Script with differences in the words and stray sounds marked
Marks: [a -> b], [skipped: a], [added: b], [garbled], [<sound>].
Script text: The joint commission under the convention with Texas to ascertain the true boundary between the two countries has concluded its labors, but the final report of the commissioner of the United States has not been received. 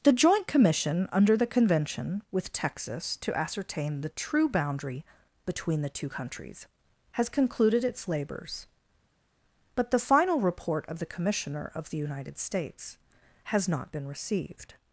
The joint commission under the convention with Texas to ascertain the true boundary between the two countries has concluded its labors, but the final report of the commissioner of the United States has not been received.